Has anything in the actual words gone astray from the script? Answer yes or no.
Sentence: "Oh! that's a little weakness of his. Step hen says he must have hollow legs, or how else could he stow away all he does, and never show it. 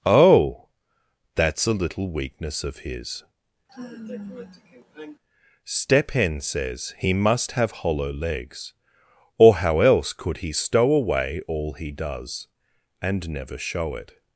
no